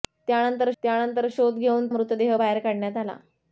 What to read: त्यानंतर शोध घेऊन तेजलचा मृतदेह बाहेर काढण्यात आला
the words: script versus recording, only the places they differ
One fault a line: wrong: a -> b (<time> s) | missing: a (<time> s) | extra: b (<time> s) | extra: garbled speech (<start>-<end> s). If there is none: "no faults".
extra: त्यानंतर (0.8 s)
missing: तेजलचा (1.9 s)